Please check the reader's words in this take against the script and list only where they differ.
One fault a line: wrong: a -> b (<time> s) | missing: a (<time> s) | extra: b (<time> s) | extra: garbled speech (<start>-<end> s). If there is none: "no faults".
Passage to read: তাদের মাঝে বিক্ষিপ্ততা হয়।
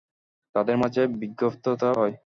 no faults